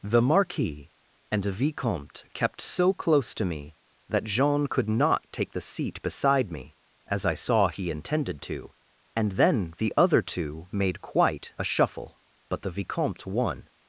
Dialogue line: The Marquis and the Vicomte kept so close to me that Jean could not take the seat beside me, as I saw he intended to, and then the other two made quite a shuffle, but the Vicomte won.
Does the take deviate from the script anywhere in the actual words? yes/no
no